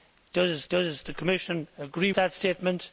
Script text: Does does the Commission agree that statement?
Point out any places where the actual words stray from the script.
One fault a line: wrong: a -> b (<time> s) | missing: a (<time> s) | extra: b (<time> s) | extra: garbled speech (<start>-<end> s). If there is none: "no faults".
no faults